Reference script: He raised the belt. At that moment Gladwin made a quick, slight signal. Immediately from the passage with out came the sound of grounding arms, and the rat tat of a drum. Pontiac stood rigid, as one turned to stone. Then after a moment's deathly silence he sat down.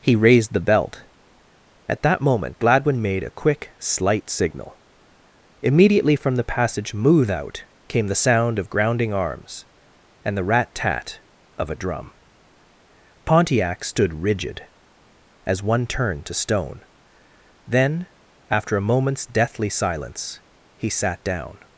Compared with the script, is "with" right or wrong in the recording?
wrong